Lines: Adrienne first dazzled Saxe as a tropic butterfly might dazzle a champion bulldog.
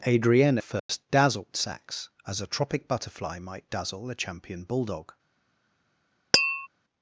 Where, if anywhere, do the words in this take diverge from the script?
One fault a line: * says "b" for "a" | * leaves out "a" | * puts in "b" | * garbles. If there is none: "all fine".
all fine